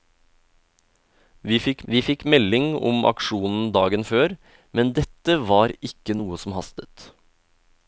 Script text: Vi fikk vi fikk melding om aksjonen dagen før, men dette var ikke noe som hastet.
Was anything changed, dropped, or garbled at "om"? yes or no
no